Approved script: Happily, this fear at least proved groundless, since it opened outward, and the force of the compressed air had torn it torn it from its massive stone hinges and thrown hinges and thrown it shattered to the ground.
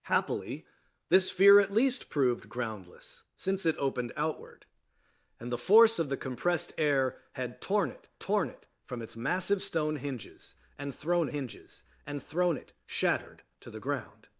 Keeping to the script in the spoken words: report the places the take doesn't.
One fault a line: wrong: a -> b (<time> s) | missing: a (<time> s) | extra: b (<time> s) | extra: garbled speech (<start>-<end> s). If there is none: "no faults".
no faults